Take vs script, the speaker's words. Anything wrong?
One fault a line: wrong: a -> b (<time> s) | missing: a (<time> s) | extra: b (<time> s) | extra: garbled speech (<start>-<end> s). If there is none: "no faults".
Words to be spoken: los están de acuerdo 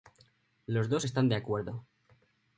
extra: dos (0.9 s)